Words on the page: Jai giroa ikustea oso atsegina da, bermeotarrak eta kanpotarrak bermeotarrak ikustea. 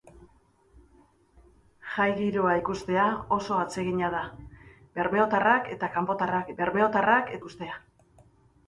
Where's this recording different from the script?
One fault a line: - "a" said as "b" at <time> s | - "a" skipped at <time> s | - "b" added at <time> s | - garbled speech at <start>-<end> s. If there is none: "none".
none